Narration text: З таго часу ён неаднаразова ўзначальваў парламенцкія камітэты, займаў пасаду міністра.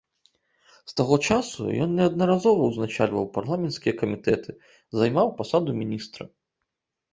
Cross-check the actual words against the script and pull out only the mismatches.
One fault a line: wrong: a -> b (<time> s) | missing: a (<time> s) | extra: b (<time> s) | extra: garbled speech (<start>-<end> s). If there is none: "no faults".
no faults